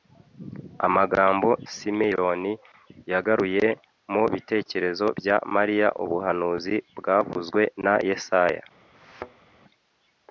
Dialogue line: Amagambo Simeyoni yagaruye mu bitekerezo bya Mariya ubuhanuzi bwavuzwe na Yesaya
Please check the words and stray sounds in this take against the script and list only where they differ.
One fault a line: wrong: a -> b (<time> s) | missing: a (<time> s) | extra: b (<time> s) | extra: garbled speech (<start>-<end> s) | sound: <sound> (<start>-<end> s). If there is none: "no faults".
sound: thud (8.9-9.5 s)